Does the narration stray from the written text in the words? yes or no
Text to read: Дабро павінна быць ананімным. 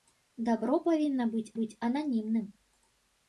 yes